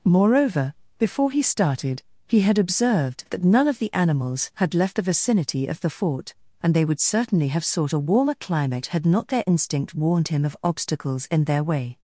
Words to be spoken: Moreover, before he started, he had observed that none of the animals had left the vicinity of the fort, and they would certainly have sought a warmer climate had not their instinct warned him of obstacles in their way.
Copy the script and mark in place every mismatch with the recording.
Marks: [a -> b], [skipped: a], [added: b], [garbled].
Moreover, before he started, he had observed that none of the animals had left the vicinity of the fort, and they would certainly have sought a warmer climate had not their instinct warned him of obstacles in their way.